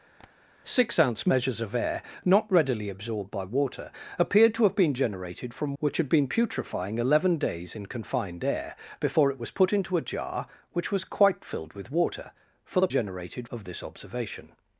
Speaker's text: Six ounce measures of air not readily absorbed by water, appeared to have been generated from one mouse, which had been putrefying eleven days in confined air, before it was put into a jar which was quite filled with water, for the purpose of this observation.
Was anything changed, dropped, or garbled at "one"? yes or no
yes